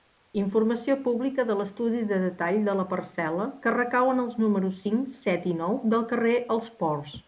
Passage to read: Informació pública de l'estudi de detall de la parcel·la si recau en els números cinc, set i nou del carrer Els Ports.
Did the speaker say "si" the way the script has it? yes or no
no